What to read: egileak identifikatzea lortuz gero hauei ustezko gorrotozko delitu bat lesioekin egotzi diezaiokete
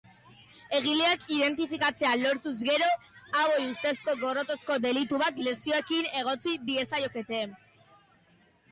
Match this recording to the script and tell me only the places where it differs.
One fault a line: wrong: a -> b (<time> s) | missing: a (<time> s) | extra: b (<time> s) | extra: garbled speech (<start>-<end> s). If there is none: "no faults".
no faults